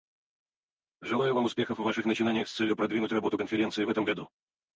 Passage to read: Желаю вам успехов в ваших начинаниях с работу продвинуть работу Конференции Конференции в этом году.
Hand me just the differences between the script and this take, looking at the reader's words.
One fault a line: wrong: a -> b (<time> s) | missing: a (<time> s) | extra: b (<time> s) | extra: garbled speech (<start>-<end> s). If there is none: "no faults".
wrong: работу -> целью (2.5 s)
missing: Конференции (3.8 s)